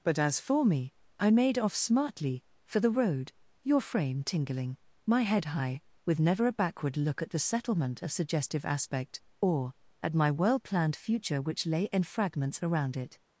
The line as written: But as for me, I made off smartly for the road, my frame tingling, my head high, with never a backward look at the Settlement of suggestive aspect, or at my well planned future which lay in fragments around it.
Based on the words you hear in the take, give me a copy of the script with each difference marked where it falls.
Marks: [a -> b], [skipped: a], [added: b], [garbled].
But as for me, I made off smartly for the road, [my -> your] frame tingling, my head high, with never a backward look at the Settlement of suggestive aspect, or at my well planned future which lay in fragments around it.